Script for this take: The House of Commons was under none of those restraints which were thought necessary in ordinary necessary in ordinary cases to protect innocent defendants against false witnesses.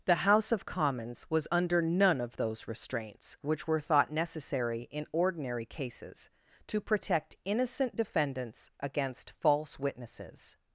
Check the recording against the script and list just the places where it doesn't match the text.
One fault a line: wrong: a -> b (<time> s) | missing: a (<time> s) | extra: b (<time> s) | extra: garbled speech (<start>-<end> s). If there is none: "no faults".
missing: necessary in ordinary (5.6 s)